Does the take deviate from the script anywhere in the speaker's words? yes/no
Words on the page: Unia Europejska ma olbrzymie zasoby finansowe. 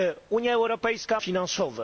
yes